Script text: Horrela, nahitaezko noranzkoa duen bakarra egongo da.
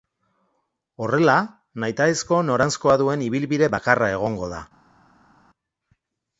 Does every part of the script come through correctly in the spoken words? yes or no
no